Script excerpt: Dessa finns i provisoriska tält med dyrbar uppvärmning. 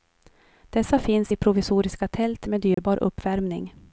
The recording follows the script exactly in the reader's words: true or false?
true